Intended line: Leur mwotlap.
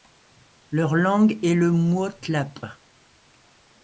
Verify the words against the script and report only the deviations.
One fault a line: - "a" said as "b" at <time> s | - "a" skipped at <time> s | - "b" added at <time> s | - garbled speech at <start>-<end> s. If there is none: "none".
- "langue est le" added at 0.9 s